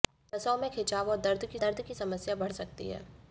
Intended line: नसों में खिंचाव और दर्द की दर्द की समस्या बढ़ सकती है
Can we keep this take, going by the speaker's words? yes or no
yes